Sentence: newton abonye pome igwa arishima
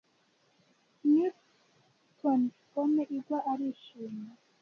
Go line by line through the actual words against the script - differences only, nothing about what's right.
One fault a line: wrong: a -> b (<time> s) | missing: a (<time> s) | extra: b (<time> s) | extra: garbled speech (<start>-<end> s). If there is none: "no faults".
missing: abonye (2.4 s)